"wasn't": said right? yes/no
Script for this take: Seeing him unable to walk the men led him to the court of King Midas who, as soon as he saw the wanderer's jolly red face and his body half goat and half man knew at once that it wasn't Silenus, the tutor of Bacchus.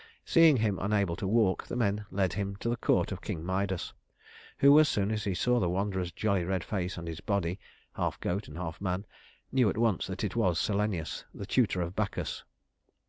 no